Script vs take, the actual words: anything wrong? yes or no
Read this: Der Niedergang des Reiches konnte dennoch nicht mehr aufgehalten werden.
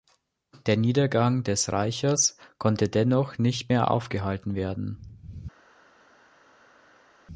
no